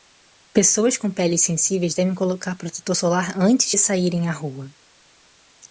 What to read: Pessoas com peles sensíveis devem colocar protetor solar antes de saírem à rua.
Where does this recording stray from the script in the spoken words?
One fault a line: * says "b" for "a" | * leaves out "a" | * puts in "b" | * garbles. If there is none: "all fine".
all fine